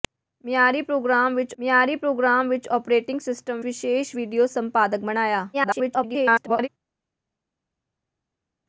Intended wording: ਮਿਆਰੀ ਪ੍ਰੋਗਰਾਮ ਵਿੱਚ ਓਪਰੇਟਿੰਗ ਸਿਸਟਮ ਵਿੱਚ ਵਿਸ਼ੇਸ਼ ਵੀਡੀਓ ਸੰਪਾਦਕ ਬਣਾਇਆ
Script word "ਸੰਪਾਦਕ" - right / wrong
right